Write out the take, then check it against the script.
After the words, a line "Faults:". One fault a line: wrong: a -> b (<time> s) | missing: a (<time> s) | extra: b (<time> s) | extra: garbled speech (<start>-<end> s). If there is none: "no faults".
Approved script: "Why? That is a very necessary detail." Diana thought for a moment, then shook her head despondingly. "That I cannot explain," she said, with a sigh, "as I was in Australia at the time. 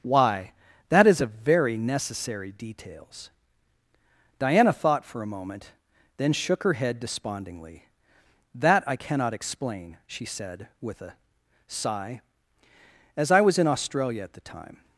"Why? That is a very necessary details." Diana thought for a moment, then shook her head despondingly. "That I cannot explain," she said, with a sigh, "as I was in Australia at the time.
Faults:
wrong: detail -> details (2.5 s)